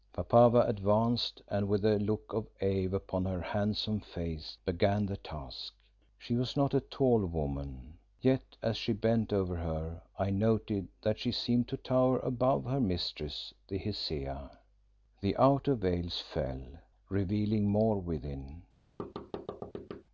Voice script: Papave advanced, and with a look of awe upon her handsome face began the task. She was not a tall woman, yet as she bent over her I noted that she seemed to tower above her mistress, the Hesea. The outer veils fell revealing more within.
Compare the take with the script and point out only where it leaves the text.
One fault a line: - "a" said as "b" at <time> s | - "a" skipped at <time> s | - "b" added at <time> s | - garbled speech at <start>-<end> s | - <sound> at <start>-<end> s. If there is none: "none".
- thud at 19.0-20.0 s